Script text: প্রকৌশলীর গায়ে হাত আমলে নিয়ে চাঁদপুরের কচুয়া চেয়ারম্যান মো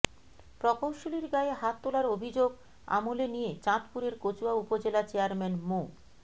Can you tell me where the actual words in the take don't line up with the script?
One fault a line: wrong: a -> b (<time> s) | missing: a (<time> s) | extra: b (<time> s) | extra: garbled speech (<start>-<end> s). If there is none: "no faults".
extra: তোলার অভিযোগ (1.8 s)
extra: উপজেলা (4.5 s)